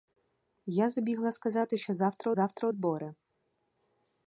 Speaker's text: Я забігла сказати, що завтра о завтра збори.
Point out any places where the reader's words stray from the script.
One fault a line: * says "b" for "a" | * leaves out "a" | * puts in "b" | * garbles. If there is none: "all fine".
all fine